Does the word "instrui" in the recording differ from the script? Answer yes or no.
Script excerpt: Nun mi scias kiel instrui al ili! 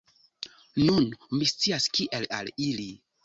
yes